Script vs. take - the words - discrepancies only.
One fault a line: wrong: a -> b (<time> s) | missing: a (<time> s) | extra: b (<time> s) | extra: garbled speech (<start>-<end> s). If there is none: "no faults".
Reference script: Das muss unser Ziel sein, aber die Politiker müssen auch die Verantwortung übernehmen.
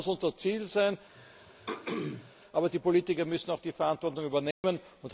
no faults